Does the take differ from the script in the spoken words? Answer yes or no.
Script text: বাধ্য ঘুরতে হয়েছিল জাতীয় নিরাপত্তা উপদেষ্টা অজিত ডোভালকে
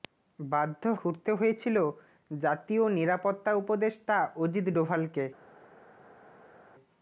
no